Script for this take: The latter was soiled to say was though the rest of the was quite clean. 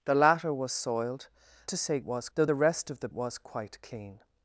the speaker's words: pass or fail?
pass